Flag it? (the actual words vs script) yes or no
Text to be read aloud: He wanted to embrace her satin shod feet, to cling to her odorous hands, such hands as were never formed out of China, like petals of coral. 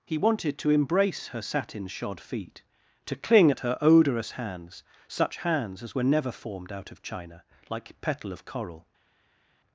yes